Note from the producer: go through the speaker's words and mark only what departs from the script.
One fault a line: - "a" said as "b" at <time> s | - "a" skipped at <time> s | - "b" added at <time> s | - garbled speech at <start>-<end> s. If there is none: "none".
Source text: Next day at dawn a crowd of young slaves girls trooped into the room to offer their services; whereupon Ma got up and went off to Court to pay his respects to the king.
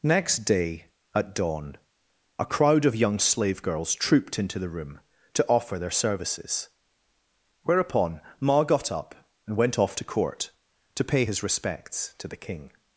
- "slaves" said as "slave" at 3.2 s